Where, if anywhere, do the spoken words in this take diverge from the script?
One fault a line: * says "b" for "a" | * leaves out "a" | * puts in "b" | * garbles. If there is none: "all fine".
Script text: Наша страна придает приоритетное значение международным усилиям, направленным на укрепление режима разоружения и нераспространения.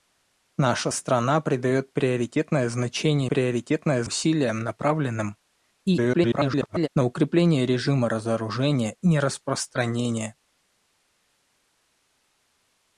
* says "приоритетное" for "международным"
* garbles
* leaves out "и"